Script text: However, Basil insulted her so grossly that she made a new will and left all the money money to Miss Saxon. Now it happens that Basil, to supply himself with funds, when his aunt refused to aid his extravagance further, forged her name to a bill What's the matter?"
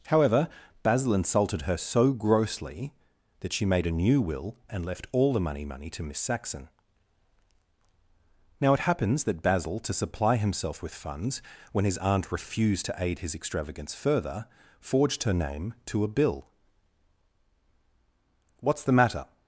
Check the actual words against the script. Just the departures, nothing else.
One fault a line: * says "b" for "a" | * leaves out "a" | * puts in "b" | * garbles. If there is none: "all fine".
all fine